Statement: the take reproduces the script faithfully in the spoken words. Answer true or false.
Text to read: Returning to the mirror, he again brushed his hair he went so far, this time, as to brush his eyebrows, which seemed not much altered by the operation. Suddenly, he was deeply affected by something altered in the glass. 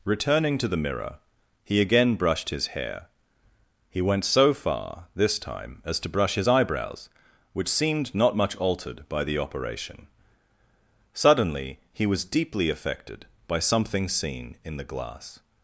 false